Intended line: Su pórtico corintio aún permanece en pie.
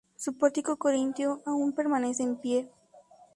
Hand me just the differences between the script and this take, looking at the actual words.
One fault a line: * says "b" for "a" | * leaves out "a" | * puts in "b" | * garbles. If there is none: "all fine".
all fine